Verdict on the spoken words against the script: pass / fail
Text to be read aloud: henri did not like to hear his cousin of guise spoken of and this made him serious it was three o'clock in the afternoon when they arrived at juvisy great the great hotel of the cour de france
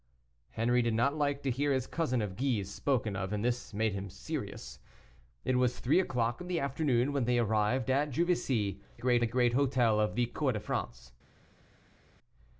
pass